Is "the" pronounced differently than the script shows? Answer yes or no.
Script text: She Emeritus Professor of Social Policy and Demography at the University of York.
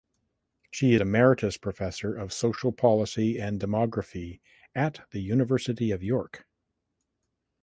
no